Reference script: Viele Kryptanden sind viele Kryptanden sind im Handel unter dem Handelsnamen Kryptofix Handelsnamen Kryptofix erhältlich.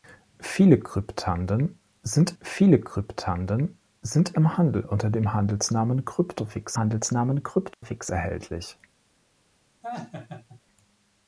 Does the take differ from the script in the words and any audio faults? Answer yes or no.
yes